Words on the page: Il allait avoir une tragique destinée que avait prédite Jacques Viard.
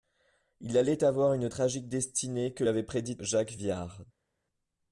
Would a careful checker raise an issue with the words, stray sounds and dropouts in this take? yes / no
no